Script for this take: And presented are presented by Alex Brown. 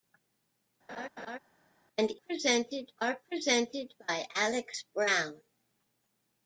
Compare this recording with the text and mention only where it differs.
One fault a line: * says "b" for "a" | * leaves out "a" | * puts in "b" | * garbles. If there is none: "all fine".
all fine